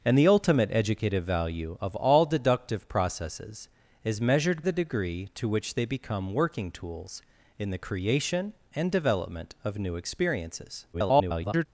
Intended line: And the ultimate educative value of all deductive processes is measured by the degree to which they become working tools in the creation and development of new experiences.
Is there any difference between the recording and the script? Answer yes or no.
yes